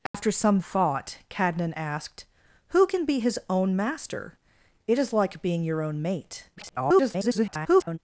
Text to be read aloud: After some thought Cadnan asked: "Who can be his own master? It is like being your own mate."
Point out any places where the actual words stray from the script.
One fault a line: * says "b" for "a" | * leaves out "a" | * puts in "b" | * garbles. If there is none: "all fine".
* garbles